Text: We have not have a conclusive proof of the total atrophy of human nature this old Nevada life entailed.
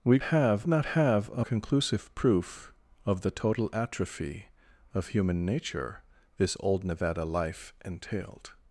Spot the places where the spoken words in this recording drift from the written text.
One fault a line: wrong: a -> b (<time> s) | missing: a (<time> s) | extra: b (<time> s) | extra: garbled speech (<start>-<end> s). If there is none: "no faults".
no faults